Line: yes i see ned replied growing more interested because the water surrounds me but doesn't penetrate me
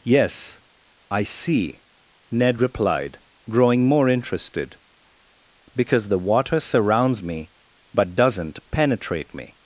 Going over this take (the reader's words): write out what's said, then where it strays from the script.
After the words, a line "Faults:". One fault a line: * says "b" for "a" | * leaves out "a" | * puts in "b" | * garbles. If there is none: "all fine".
yes i see ned replied growing more interested because the water surrounds me but doesn't penetrate me
Faults:
all fine